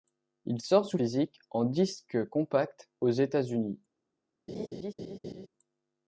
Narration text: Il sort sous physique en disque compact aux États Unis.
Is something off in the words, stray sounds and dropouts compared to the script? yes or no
yes